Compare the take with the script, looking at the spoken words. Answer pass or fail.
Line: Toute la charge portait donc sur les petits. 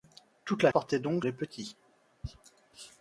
fail